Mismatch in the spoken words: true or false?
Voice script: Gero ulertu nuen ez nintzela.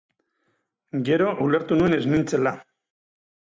false